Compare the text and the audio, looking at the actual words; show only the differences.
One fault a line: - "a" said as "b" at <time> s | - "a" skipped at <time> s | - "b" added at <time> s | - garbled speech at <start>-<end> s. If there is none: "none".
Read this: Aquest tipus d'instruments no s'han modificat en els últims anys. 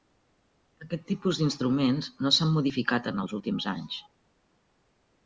none